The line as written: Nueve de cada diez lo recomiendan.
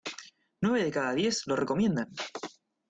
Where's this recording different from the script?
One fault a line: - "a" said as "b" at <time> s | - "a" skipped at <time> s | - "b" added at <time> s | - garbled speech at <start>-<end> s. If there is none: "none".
none